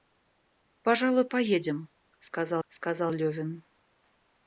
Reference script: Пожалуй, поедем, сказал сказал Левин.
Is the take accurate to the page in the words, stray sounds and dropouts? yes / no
yes